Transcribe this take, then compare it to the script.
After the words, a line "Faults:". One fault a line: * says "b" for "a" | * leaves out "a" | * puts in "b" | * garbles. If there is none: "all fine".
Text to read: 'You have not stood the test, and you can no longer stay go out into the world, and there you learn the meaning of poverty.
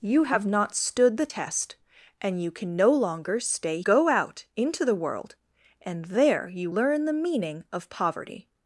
'You have not stood the test, and you can no longer stay go out into the world, and there you learn the meaning of poverty.
Faults:
all fine